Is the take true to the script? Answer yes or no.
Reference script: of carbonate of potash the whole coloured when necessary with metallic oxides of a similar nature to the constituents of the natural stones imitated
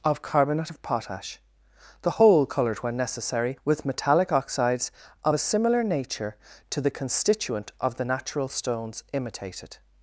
no